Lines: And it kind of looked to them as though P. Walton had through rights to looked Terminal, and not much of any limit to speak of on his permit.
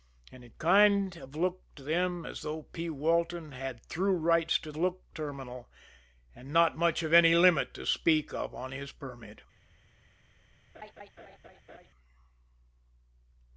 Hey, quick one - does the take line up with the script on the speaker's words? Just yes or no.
yes